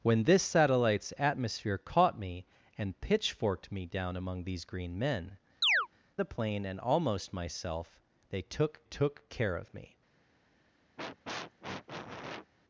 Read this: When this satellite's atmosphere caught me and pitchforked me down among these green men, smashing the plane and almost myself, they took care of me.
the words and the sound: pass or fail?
fail